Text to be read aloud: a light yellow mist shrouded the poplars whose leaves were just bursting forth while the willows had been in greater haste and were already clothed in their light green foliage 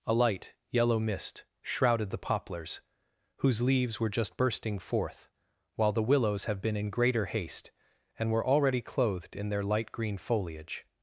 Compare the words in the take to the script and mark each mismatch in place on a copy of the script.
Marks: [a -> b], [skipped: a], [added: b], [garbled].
a light yellow mist shrouded the poplars whose leaves were just bursting forth while the willows [had -> have] been in greater haste and were already clothed in their light green foliage